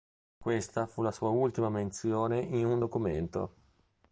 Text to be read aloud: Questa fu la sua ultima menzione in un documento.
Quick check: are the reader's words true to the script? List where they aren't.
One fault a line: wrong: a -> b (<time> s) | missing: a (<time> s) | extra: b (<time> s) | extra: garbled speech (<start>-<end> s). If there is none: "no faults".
no faults